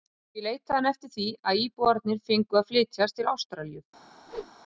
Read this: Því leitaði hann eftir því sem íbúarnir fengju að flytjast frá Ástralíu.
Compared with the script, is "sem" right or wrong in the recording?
wrong